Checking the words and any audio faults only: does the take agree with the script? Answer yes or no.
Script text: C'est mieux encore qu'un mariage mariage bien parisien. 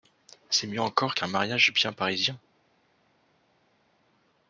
no